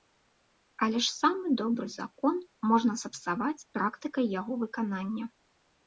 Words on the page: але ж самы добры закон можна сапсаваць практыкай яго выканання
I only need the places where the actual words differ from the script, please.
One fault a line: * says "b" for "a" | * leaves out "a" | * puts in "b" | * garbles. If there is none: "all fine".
all fine